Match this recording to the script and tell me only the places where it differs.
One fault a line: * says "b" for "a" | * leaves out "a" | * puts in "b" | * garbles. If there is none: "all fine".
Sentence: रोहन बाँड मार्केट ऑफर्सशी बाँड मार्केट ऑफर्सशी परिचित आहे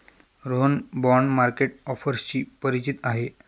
* leaves out "बाँड मार्केट ऑफर्सशी"